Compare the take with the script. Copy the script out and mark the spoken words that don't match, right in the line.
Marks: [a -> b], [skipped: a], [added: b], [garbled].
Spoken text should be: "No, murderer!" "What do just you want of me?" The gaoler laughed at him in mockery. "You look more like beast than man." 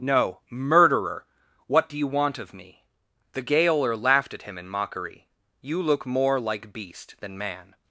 "No, murderer!" "What do [skipped: just] you want of me?" The gaoler laughed at him in mockery. "You look more like beast than man."